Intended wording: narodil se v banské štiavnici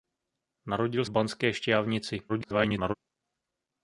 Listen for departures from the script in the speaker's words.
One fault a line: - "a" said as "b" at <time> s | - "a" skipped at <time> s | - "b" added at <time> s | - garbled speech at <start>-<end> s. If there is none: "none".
- "se" skipped at 1.1 s
- garbled speech at 2.3-2.9 s